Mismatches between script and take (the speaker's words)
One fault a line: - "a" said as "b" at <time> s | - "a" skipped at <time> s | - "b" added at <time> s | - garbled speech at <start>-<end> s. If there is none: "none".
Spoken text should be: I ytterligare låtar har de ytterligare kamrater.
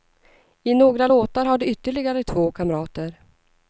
- "ytterligare" said as "några" at 0.7 s
- "två" added at 2.2 s